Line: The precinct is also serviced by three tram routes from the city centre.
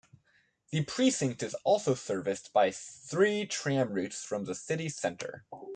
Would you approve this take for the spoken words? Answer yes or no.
yes